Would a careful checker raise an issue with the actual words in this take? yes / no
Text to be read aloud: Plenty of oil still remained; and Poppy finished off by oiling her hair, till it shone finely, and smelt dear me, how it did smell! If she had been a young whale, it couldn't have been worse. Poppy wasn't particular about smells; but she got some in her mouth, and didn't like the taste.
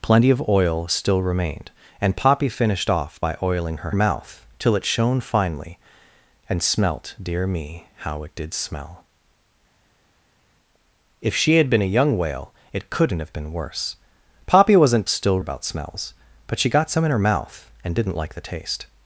yes